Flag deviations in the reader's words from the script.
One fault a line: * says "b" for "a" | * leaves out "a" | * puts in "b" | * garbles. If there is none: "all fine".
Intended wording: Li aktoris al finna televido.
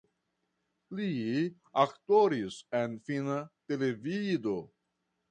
* says "en" for "al"